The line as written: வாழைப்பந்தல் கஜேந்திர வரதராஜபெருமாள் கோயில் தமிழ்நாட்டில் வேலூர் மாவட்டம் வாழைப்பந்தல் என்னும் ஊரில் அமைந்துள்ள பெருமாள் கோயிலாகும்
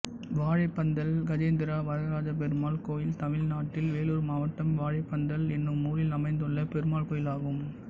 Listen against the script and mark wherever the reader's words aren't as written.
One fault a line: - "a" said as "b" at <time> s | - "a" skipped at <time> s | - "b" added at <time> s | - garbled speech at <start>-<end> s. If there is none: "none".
none